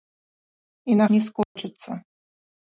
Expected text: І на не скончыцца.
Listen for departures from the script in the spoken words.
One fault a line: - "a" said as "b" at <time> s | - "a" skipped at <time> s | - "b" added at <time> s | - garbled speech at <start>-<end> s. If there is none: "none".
none